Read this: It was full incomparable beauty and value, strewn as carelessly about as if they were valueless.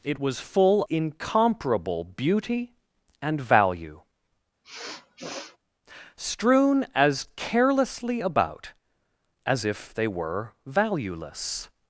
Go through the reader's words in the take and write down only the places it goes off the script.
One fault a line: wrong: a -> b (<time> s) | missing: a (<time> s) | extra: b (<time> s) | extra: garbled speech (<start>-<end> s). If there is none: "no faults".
no faults